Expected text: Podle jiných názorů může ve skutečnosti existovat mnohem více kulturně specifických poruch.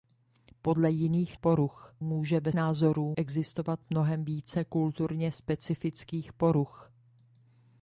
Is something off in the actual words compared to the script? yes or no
yes